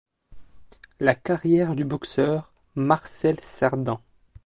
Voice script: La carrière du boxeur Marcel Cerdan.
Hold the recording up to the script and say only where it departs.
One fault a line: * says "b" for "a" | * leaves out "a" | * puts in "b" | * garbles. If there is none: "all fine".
all fine